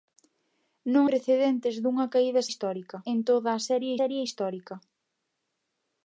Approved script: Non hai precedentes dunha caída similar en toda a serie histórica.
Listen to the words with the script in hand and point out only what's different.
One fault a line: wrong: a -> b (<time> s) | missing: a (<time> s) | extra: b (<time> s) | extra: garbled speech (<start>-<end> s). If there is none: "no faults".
missing: hai (1.1 s)
wrong: similar -> histórica (2.5 s)
extra: serie (4.0 s)